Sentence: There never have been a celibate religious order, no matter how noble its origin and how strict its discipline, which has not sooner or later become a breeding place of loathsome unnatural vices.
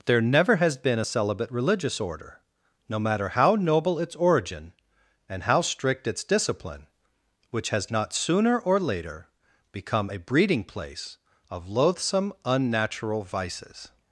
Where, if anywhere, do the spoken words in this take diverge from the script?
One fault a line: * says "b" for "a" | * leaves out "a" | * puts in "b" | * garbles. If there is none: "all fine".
* says "has" for "have"